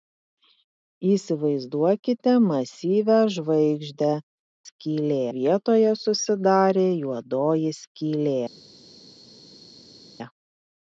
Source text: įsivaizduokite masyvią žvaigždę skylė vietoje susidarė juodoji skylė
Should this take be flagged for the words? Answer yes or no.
no